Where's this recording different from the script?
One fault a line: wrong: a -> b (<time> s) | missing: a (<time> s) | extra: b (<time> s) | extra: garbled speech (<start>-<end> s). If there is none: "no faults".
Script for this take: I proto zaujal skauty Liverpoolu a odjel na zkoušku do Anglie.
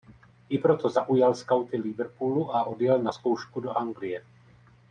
no faults